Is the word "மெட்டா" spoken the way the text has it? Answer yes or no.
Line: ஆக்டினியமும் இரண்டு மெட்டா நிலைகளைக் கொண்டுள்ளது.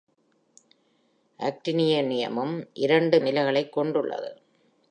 no